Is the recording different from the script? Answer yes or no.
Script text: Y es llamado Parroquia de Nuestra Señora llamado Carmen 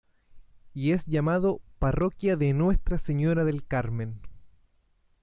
yes